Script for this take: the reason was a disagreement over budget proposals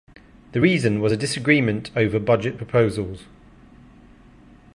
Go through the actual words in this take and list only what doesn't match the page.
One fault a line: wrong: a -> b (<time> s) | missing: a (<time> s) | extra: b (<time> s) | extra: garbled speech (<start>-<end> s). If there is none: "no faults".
no faults